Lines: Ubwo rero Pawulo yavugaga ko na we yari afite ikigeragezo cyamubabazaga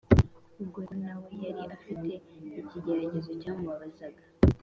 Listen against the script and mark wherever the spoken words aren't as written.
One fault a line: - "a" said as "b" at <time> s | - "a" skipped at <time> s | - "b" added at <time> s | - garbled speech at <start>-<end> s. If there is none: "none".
- "rero Pawulo yavugaga" skipped at 0.8 s